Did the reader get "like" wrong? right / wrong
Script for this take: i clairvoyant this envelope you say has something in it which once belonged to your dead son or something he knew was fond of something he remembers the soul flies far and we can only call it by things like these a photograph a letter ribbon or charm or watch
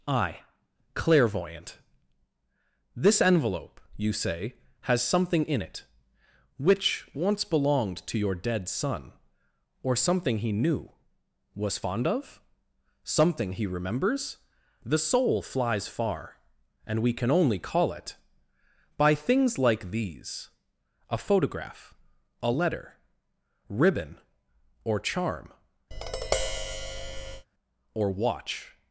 right